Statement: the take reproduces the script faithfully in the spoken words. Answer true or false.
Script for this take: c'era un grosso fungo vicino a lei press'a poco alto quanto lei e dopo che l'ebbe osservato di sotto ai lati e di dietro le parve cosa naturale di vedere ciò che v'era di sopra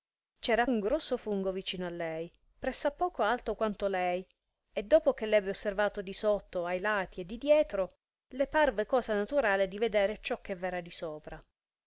true